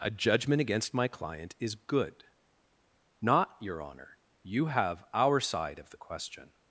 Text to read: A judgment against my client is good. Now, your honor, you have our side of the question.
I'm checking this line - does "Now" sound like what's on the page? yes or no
no